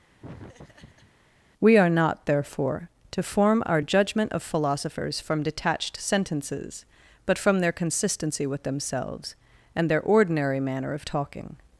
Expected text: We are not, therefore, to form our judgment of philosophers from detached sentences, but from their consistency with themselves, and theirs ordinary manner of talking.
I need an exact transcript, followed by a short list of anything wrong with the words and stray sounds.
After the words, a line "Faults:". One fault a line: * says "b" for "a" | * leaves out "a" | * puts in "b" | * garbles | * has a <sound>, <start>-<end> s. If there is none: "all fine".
We are not, therefore, to form our judgment of philosophers from detached sentences, but from their consistency with themselves, and their ordinary manner of talking.
Faults:
* has a laugh, 0.2-1.1 s
* says "their" for "theirs"